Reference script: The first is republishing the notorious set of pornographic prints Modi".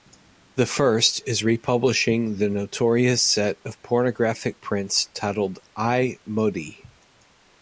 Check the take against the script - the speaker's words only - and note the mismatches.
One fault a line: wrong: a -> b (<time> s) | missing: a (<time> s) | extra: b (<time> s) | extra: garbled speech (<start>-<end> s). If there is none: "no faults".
extra: titled I (5.1 s)